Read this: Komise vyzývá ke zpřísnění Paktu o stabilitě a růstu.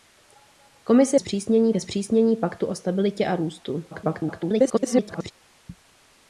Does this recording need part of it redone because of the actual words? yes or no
yes